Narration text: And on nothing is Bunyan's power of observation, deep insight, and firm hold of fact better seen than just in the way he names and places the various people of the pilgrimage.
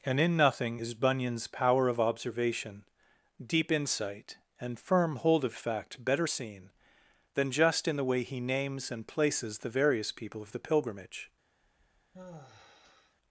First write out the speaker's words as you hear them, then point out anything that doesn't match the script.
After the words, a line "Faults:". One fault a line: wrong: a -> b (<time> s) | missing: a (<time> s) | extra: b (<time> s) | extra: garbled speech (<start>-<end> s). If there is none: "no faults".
And in nothing is Bunyan's power of observation, deep insight, and firm hold of fact better seen than just in the way he names and places the various people of the pilgrimage.
Faults:
wrong: on -> in (0.2 s)